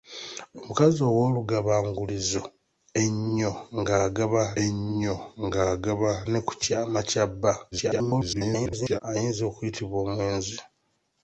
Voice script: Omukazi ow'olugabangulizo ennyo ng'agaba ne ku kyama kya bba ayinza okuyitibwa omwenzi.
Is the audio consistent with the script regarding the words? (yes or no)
no